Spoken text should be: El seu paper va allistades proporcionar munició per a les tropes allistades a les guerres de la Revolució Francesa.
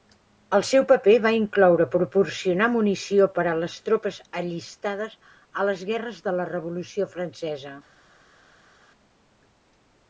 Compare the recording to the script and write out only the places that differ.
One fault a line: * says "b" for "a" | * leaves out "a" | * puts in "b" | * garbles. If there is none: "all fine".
* says "incloure" for "allistades"